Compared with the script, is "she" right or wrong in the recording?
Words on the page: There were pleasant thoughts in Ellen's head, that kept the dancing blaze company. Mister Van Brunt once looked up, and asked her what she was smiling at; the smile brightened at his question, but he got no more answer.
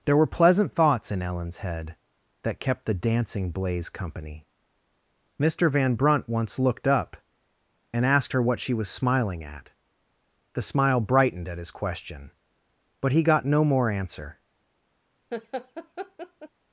right